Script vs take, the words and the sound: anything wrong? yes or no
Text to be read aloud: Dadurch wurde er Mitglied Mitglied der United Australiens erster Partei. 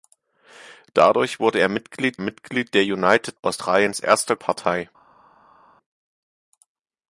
no